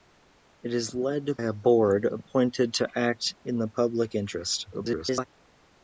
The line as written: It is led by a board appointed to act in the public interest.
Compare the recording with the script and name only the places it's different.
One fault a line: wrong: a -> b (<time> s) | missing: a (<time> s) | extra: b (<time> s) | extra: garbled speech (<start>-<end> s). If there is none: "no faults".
missing: by (1.3 s)
extra: garbled speech (4.7-5.3 s)